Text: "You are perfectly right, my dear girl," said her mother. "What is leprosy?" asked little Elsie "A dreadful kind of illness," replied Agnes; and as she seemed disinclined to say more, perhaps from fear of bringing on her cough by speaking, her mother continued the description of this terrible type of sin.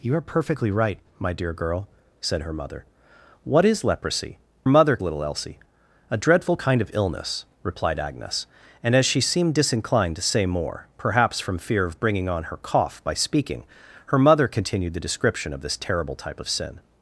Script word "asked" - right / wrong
wrong